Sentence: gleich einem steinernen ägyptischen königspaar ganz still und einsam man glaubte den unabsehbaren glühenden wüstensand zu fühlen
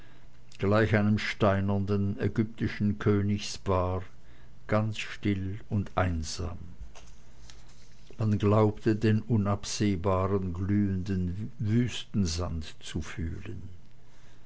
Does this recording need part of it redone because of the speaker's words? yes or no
no